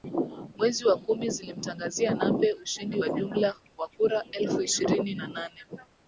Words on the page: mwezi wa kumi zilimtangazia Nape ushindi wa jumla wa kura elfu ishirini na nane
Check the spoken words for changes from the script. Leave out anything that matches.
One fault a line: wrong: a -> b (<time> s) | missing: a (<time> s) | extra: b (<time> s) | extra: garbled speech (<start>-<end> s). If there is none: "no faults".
no faults